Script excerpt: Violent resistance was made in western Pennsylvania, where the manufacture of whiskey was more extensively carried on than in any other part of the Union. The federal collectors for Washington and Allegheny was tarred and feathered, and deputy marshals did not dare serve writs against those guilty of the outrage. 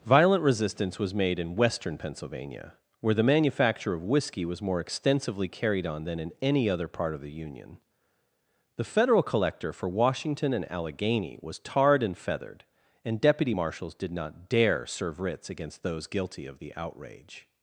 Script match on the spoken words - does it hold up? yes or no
no